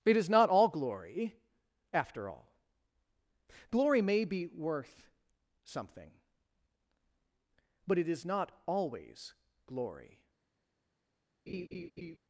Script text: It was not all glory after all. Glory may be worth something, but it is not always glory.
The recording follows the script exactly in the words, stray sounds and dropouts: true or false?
false